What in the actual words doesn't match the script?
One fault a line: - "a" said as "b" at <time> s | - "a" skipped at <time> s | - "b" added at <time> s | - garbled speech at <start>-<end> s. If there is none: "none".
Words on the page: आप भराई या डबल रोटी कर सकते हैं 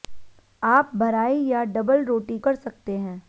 none